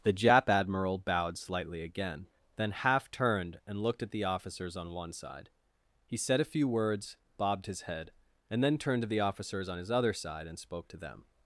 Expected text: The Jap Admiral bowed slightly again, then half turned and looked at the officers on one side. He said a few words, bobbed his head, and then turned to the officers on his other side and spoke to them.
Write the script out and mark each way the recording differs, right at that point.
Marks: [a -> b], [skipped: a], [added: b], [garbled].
The Jap Admiral bowed slightly again, then half turned and looked at the officers on one side. He said a few words, bobbed his head, and then turned to the officers on his other side and spoke to them.